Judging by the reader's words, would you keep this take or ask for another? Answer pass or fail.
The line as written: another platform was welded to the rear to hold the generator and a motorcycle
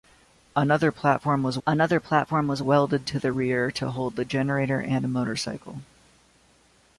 fail